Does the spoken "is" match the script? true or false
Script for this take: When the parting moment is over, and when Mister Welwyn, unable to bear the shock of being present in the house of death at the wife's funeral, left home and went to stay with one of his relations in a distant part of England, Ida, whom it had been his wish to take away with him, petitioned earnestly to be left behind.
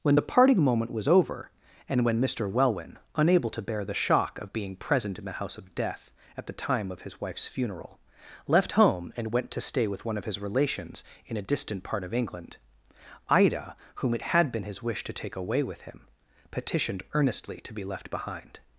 false